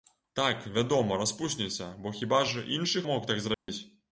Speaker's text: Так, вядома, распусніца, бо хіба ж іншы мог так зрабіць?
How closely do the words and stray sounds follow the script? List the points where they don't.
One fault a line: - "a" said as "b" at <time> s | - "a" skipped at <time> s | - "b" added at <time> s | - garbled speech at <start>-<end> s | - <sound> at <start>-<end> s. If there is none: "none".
- dropout at 3.5-3.7 s